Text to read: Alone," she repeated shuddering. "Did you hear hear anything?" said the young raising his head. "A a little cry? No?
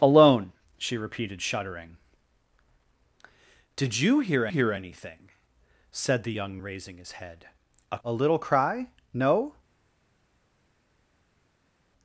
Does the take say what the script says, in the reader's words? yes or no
yes